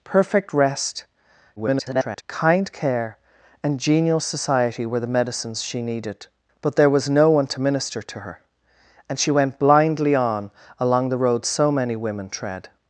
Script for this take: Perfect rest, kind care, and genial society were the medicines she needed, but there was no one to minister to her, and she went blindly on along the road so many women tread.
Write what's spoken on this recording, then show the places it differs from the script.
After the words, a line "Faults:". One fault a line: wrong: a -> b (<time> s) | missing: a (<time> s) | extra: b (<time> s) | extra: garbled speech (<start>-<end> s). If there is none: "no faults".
Perfect rest, [garbled] kind care, and genial society were the medicines she needed, but there was no one to minister to her, and she went blindly on along the road so many women tread.
Faults:
extra: garbled speech (1.6-2.2 s)